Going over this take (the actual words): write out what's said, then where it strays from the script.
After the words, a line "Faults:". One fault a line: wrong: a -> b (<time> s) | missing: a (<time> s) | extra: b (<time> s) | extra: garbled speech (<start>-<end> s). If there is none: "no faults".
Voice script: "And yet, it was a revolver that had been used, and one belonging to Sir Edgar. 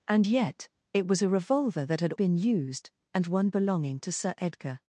"And yet, it was a revolver that had been used, and one belonging to Sir Edgar.
Faults:
no faults